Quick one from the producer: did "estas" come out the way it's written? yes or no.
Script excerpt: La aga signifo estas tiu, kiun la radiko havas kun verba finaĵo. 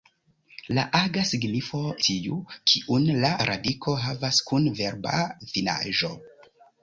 no